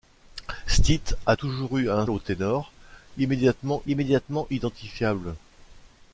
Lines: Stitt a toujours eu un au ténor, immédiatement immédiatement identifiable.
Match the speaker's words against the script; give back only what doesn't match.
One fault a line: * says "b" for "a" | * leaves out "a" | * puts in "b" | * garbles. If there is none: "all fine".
all fine